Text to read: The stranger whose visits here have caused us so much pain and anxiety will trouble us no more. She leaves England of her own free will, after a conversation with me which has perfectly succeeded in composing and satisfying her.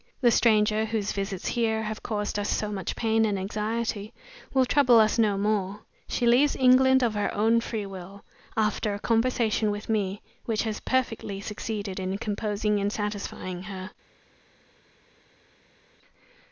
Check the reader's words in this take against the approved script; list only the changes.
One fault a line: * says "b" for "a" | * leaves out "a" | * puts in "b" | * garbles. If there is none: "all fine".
all fine